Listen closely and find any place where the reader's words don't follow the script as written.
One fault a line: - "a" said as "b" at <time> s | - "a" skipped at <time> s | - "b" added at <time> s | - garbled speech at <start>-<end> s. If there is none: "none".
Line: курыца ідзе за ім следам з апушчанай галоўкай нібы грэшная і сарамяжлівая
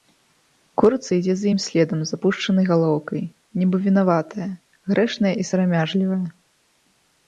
- "вінаватая" added at 3.9 s